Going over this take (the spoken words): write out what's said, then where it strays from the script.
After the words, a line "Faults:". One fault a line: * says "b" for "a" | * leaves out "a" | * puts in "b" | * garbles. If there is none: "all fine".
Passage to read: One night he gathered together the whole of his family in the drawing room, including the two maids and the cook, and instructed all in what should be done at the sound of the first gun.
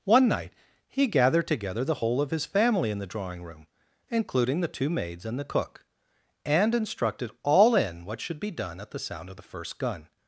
One night he gathered together the whole of his family in the drawing room, including the two maids and the cook, and instructed all in what should be done at the sound of the first gun.
Faults:
all fine